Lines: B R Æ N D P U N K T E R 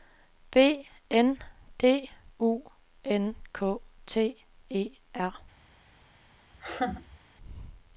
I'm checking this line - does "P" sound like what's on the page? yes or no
no